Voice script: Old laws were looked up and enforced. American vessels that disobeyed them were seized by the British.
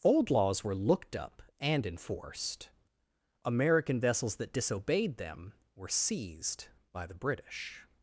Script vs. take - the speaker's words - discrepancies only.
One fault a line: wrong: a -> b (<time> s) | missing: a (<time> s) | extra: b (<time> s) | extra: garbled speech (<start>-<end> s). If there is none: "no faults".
no faults